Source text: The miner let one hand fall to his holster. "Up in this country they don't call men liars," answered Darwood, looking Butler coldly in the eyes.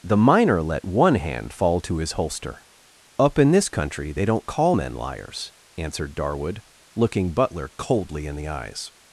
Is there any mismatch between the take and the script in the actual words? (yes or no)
no